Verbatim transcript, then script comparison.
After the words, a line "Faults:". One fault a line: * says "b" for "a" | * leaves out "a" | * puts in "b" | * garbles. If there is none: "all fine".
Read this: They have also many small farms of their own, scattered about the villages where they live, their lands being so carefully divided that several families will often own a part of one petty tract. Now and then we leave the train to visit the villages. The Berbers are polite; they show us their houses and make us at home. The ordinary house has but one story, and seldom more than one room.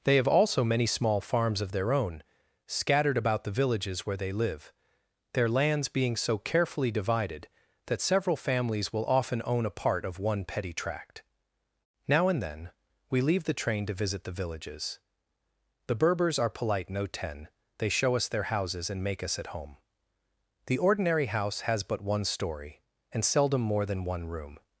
They have also many small farms of their own, scattered about the villages where they live, their lands being so carefully divided that several families will often own a part of one petty tract. Now and then we leave the train to visit the villages. The Berbers are polite; no ten they show us their houses and make us at home. The ordinary house has but one story, and seldom more than one room.
Faults:
* puts in "no ten"